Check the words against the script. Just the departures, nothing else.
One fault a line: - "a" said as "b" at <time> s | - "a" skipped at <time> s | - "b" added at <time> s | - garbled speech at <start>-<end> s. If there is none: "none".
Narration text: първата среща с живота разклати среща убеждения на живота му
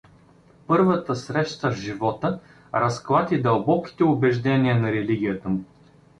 - "среща" said as "дълбоките" at 3.4 s
- "живота" said as "религията" at 4.9 s